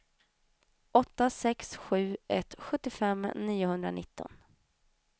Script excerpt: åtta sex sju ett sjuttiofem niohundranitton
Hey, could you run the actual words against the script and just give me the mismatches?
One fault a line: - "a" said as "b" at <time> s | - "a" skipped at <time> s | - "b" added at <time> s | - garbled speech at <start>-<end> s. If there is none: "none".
none